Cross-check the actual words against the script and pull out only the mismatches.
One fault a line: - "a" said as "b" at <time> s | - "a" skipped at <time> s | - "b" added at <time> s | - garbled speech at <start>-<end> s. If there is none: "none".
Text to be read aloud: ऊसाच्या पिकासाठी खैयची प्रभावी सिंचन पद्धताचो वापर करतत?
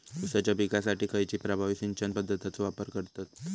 none